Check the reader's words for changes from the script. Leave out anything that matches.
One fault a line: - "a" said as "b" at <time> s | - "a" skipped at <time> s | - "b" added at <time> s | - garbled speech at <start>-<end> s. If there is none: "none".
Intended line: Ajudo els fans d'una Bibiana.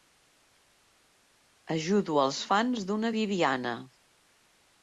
none